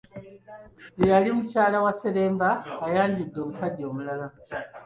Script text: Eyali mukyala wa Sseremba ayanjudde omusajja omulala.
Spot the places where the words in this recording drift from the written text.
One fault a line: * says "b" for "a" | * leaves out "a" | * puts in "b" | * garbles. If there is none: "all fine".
all fine